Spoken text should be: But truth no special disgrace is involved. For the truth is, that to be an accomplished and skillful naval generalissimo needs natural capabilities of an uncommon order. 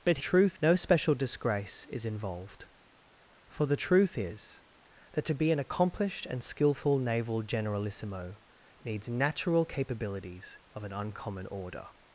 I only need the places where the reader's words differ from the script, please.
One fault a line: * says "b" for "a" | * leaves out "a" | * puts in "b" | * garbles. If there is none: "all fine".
all fine